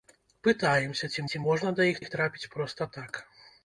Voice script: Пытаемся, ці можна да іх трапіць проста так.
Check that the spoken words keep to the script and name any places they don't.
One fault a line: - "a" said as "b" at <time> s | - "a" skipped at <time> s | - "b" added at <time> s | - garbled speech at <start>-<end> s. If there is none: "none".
- "ці" added at 1.3 s
- "іх" added at 2.0 s